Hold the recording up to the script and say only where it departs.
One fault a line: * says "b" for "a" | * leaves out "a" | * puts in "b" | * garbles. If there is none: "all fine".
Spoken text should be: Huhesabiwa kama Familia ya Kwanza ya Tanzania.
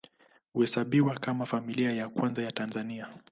all fine